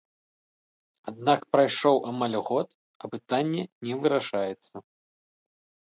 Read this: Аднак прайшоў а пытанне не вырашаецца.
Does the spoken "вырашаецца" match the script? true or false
true